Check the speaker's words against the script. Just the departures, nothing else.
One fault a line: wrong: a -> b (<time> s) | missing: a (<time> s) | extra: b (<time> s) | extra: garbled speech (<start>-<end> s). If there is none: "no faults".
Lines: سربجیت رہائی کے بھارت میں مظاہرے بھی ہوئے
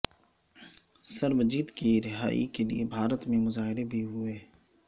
extra: کی (1.7 s)
extra: لیے (2.6 s)